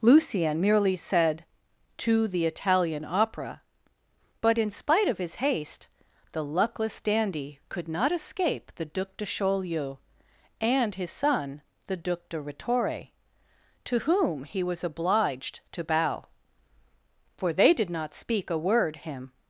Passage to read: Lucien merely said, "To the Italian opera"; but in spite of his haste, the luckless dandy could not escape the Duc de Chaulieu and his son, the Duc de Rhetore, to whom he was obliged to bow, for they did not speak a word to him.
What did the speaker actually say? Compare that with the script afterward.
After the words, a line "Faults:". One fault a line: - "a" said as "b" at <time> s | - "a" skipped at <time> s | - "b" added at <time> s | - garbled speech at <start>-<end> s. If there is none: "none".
Lucien merely said, "To the Italian opera"; but in spite of his haste, the luckless dandy could not escape the Duc de Chaulieu and his son, the Duc de Rhetore, to whom he was obliged to bow, for they did not speak a word him.
Faults:
- "to" skipped at 19.0 s